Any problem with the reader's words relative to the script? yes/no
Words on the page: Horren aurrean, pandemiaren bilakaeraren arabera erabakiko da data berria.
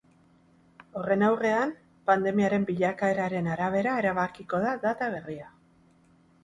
no